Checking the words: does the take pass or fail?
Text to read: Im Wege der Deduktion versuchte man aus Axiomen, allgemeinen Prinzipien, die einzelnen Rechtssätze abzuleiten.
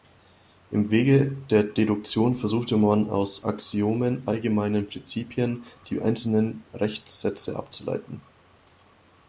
pass